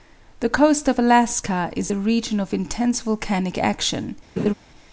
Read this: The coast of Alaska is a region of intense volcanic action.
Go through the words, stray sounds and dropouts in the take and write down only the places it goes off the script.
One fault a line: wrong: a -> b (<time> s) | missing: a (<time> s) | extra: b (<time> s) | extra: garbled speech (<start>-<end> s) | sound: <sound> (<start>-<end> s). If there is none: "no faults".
sound: laugh (4.4-4.5 s)